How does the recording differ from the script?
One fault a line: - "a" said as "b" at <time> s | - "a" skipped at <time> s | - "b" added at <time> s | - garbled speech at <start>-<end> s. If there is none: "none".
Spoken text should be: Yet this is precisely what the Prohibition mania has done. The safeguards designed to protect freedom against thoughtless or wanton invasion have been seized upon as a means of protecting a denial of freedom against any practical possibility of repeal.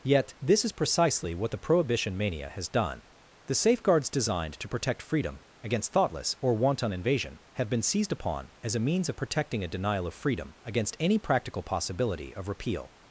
none